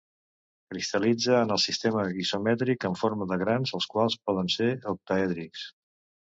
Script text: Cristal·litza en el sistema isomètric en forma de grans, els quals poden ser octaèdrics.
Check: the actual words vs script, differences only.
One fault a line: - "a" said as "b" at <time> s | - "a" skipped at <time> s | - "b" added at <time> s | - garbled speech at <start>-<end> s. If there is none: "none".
none